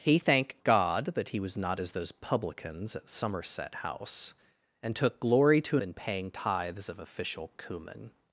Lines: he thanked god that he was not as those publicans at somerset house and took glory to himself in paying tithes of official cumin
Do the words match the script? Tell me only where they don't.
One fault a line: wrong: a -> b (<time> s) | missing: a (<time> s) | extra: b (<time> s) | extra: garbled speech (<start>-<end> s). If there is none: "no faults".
missing: himself (5.8 s)